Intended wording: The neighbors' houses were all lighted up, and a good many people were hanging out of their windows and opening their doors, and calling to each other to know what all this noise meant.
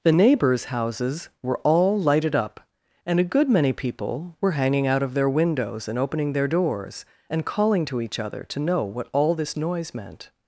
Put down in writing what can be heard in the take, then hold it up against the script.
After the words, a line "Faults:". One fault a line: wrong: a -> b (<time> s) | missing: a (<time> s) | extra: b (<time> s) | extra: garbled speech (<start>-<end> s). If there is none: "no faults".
The neighbors' houses were all lighted up, and a good many people were hanging out of their windows and opening their doors, and calling to each other to know what all this noise meant.
Faults:
no faults